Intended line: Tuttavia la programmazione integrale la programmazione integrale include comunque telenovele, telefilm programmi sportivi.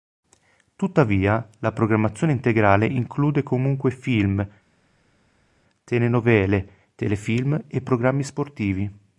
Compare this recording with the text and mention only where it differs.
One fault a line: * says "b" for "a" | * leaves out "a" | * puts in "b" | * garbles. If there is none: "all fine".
* leaves out "la programmazione integrale"
* puts in "film"
* puts in "e"